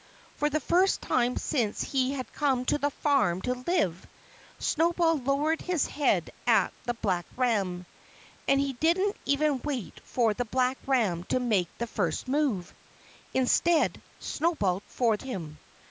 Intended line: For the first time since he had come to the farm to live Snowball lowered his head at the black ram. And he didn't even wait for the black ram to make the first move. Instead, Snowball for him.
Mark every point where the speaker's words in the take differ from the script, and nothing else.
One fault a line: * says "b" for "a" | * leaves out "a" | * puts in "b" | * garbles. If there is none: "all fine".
all fine